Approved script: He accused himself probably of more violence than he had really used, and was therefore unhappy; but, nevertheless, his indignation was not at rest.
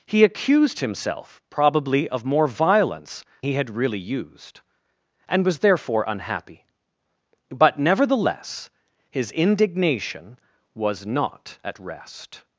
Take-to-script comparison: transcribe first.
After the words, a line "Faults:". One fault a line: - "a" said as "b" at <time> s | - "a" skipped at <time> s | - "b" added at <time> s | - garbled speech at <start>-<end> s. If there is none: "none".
He accused himself probably of more violence he had really used, and was therefore unhappy; but, nevertheless, his indignation was not at rest.
Faults:
- "than" skipped at 3.2 s